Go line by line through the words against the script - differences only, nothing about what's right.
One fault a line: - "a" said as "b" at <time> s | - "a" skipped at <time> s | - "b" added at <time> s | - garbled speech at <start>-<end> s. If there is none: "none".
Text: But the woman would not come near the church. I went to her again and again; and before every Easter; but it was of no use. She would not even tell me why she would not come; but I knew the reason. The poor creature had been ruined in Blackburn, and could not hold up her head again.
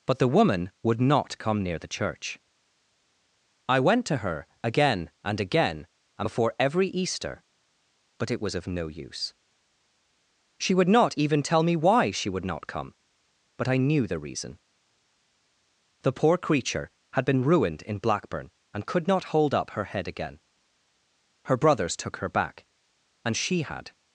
- "Her brothers took her back and she had" added at 21.5 s